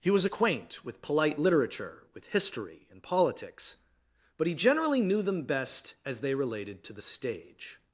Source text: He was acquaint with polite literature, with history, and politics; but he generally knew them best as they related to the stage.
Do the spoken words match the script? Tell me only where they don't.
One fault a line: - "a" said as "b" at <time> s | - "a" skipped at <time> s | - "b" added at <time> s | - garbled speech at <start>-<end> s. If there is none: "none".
none